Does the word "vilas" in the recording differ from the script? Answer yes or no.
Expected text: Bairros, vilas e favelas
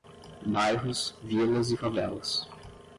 no